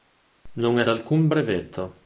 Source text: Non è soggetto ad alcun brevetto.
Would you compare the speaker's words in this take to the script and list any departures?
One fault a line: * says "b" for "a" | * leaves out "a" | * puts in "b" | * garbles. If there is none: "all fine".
* leaves out "soggetto ad"